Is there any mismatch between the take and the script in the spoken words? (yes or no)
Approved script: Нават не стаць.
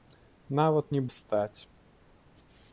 no